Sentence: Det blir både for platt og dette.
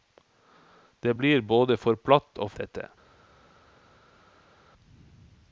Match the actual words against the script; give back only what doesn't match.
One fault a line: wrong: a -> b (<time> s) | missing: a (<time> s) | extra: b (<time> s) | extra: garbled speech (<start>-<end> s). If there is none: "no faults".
no faults